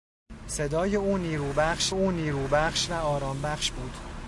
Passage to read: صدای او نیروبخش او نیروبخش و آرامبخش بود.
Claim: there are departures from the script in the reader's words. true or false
false